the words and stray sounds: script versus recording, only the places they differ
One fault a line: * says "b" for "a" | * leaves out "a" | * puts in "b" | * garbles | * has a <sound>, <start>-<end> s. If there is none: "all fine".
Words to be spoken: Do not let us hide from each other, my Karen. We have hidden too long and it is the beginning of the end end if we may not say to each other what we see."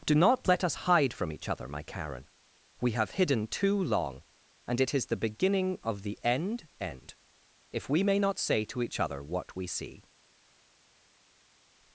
all fine